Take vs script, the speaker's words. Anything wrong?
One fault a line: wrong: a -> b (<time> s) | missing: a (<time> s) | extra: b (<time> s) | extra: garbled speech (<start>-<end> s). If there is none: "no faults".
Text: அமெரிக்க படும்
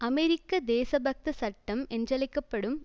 extra: தேசபக்த சட்டம் என்றழைக்க (0.7 s)